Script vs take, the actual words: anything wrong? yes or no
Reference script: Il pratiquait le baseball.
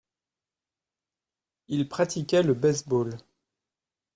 no